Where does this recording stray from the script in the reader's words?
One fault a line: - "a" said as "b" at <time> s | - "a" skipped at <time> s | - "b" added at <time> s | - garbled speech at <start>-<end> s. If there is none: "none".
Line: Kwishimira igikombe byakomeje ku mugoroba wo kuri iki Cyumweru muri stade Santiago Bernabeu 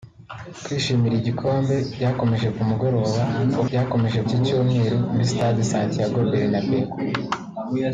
- "kuri" said as "byakomeje" at 3.7 s